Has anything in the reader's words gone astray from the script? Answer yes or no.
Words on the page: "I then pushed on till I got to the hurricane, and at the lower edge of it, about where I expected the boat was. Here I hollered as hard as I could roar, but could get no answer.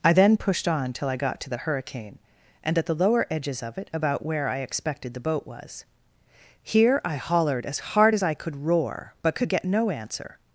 yes